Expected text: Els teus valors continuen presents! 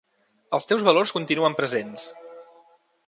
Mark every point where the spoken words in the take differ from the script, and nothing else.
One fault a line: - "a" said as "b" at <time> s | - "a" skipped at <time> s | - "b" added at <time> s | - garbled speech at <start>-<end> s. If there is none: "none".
none